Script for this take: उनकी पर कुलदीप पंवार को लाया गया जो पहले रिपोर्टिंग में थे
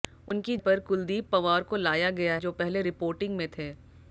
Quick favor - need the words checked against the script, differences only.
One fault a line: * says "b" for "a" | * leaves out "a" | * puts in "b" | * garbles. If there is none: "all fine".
all fine